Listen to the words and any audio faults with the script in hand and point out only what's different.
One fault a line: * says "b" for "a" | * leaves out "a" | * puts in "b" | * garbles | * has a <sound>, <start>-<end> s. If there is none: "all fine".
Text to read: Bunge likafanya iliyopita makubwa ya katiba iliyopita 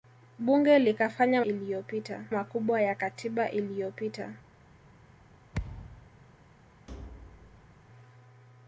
* has a thud, 5.5-6.1 s
* has a thud, 6.9-7.8 s